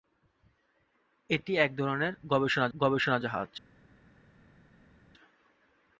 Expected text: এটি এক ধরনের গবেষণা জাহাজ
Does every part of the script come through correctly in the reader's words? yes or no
no